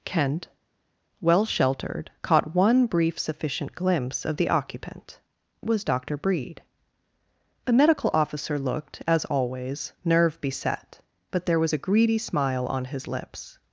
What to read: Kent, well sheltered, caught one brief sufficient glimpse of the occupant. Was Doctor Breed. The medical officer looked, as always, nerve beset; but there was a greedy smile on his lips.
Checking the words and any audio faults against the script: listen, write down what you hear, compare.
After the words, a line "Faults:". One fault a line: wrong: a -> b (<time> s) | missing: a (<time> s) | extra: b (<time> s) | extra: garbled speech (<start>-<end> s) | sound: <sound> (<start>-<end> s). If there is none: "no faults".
Kent, well sheltered, caught one brief sufficient glimpse of the occupant. Was Doctor Breed. The medical officer looked, as always, nerve beset; but there was a greedy smile on his lips.
Faults:
no faults